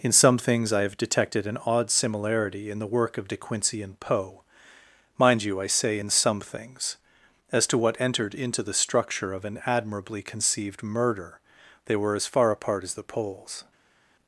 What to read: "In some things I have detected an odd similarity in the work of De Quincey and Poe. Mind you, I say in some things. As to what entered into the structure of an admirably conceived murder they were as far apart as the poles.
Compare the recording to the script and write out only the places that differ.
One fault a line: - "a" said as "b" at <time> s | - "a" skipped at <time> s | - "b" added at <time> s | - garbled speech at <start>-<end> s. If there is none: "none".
none